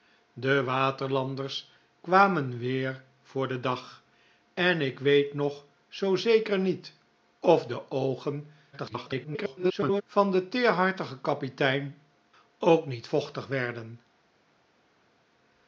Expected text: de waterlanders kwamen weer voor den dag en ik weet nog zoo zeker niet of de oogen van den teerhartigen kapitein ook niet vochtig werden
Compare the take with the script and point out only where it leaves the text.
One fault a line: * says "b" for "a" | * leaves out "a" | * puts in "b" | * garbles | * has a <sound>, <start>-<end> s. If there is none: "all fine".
* garbles